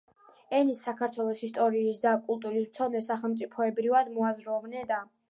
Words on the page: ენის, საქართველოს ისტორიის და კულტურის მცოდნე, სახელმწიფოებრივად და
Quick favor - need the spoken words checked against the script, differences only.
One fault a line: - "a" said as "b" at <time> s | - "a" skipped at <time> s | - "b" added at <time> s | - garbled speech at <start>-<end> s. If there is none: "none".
- "მოაზროვნე" added at 4.2 s